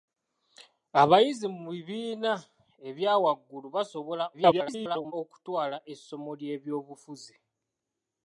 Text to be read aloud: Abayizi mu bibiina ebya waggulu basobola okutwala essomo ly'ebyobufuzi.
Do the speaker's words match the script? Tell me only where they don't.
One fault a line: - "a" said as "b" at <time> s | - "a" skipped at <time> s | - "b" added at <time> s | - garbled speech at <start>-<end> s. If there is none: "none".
- garbled speech at 4.3-5.1 s